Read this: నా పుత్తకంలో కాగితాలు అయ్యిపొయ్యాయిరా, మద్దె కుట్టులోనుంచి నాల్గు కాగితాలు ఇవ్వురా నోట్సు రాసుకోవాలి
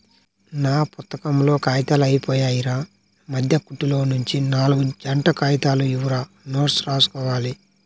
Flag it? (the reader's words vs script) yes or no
yes